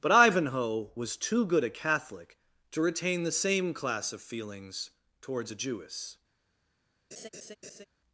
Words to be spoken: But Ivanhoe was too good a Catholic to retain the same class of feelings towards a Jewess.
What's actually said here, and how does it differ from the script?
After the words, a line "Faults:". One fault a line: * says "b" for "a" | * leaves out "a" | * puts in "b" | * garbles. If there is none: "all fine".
But Ivanhoe was too good a Catholic to retain the same class of feelings towards a Jewess.
Faults:
all fine